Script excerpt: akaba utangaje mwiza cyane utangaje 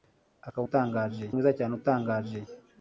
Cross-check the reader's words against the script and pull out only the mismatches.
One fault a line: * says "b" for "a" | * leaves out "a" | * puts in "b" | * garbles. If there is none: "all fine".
all fine